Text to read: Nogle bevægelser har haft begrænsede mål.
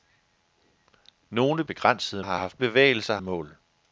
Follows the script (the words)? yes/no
no